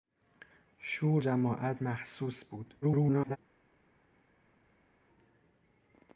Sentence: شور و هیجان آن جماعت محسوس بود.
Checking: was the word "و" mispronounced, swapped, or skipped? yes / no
yes